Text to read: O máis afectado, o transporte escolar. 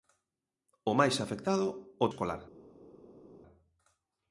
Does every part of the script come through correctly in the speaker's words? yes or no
no